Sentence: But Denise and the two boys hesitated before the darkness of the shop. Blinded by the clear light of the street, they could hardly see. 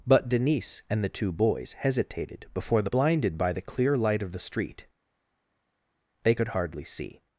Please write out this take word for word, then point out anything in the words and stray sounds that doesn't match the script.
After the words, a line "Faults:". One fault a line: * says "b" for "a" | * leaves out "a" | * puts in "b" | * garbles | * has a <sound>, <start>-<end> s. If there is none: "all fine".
But Denise and the two boys hesitated before the. Blinded by the clear light of the street, they could hardly see.
Faults:
* leaves out "darkness of the shop"